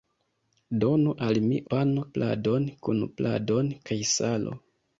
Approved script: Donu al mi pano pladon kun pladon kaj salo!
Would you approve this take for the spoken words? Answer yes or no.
yes